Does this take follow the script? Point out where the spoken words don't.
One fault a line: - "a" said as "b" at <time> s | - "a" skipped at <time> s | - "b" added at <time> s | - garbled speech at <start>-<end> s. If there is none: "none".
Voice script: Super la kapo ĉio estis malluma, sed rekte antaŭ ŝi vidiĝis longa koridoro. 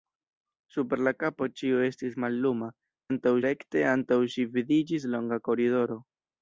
- "sed" said as "antaŭ" at 3.1 s